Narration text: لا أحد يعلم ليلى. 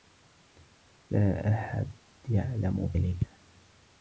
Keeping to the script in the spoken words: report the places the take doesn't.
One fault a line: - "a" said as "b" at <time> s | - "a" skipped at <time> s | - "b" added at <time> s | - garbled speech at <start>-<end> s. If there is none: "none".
none